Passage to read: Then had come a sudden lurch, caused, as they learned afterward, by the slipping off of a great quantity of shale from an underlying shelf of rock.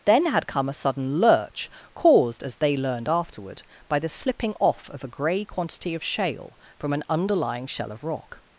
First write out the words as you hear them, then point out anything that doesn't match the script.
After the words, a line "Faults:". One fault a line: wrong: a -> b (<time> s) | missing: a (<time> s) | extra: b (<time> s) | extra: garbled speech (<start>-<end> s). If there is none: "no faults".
Then had come a sudden lurch, caused, as they learned afterward, by the slipping off of a grey quantity of shale from an underlying shell of rock.
Faults:
wrong: great -> grey (5.1 s)
wrong: shelf -> shell (7.7 s)